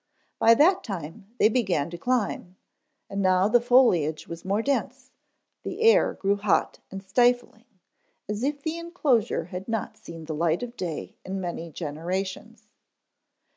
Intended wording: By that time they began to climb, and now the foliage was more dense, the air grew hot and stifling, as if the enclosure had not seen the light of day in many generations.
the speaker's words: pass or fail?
pass